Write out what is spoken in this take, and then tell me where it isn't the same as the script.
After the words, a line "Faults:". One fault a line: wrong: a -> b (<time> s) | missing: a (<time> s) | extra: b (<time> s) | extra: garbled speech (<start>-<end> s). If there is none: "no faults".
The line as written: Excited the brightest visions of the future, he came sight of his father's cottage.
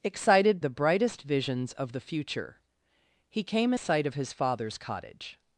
Excited the brightest visions of the future, he came sight of his father's cottage.
Faults:
no faults